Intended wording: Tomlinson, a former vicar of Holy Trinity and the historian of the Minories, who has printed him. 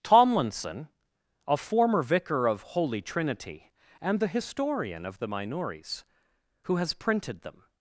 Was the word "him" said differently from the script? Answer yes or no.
yes